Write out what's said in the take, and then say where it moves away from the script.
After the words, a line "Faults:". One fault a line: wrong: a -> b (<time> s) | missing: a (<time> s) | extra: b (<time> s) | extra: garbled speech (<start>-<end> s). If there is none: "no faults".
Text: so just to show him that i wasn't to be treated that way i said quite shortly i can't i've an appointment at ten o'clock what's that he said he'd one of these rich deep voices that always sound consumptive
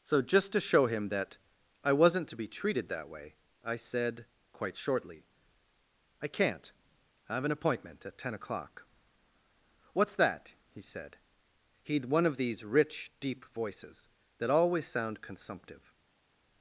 so just to show him that i wasn't to be treated that way i said quite shortly i can't i've an appointment at ten o'clock what's that he said he'd one of these rich deep voices that always sound consumptive
Faults:
no faults